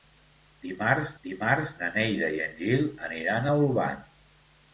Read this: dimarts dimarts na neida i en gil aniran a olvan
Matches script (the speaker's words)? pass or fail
pass